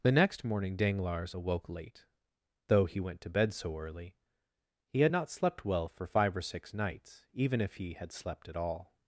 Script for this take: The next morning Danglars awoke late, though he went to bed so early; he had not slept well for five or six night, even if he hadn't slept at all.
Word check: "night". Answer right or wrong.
wrong